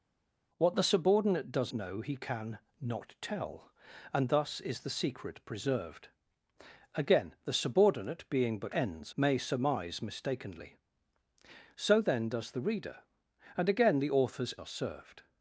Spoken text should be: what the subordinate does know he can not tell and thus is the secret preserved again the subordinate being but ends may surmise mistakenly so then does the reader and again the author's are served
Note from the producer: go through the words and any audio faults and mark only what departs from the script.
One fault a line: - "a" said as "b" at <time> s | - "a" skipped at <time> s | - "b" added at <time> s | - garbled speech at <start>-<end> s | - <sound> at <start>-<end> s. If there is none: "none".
none